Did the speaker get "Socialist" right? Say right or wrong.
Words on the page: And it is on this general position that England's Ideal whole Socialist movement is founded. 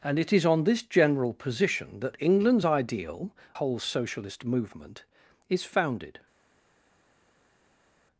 right